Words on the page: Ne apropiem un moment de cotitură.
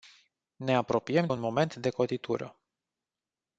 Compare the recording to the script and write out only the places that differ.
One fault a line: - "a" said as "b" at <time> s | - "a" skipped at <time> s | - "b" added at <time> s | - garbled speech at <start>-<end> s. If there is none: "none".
none